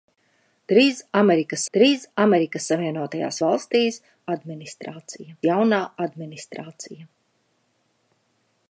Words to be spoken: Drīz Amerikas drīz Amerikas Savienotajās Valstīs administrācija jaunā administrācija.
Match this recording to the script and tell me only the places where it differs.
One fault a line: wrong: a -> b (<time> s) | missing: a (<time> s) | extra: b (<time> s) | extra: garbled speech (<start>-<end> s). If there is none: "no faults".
no faults